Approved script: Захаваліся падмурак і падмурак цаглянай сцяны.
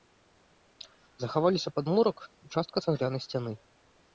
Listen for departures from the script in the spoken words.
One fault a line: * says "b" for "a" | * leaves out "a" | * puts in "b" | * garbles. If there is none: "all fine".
* says "частка" for "падмурак"